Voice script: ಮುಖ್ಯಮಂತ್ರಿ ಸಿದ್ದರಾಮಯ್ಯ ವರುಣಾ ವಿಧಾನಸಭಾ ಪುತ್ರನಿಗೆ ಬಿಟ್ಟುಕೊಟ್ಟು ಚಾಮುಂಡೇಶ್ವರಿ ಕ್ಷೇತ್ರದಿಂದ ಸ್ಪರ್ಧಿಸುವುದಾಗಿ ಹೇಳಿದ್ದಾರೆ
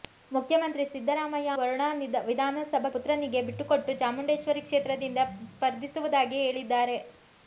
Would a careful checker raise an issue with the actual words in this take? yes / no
no